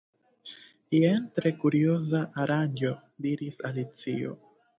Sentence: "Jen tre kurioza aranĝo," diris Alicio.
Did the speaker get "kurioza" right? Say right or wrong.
right